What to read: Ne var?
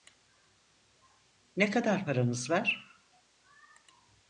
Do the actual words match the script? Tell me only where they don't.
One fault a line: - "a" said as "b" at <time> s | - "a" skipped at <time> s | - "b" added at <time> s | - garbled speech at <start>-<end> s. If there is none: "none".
- "kadar paranız" added at 1.7 s